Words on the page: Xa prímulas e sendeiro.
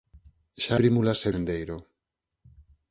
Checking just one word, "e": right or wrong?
right